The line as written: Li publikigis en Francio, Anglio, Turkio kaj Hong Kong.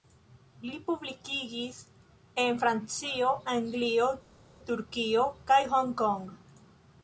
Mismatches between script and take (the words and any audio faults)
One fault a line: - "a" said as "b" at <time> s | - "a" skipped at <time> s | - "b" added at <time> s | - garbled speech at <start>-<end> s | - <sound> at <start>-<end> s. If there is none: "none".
none